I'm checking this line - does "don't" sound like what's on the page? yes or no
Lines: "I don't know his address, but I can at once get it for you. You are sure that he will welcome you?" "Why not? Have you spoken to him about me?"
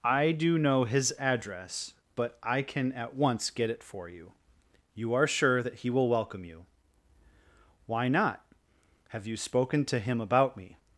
no